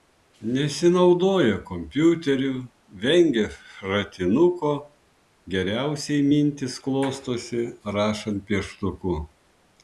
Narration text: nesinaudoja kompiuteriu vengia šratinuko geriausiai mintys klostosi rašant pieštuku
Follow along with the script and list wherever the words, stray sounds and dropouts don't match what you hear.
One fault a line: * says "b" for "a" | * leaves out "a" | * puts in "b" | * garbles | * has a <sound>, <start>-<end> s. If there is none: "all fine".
all fine